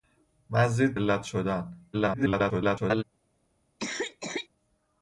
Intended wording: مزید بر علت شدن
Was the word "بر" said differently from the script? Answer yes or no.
yes